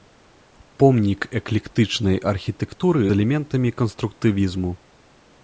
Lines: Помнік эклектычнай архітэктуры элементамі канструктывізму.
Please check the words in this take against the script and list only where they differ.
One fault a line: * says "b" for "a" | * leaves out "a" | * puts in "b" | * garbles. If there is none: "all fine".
all fine